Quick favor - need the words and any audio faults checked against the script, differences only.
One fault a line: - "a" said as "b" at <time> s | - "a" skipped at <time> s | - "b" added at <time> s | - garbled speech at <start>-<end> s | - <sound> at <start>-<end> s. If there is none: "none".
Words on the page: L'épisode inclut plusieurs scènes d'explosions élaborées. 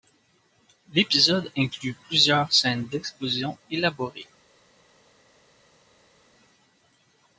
none